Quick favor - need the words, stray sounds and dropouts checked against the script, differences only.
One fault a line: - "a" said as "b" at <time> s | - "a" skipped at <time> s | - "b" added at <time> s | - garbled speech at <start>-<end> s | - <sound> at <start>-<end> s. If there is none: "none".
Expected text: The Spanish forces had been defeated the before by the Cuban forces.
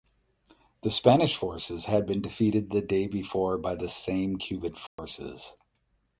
- "day" added at 2.8 s
- "same" added at 3.9 s
- dropout at 4.9-5.0 s